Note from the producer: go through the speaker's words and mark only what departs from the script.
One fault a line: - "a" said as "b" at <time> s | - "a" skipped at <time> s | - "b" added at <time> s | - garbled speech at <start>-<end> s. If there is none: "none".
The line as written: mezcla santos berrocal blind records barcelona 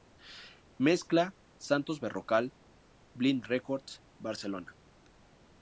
none